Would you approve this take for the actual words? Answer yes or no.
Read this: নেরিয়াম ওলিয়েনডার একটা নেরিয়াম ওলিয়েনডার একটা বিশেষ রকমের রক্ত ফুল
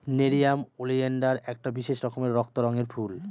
no